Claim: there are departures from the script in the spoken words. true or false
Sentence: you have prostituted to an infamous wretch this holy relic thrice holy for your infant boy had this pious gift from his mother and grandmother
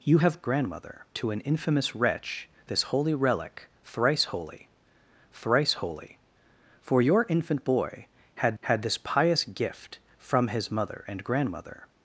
true